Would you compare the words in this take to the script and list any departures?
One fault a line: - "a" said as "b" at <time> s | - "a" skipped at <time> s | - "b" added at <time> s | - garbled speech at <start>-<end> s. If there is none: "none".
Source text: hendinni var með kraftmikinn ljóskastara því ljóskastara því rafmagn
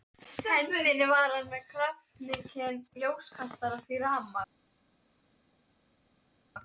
- "hann" added at 1.3 s
- "ljóskastara því" skipped at 4.0 s